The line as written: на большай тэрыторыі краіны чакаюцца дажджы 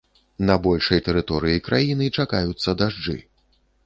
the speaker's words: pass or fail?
pass